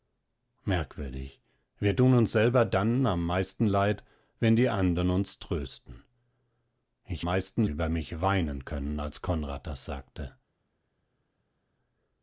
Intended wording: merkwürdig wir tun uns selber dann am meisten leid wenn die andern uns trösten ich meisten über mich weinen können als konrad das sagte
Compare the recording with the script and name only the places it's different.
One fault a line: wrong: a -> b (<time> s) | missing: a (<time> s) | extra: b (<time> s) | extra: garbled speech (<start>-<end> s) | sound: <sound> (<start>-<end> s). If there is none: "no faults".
no faults